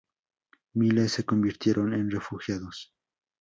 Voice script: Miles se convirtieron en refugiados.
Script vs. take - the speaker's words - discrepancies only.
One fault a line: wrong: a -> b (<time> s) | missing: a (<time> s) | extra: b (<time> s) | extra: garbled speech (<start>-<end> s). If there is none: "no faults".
no faults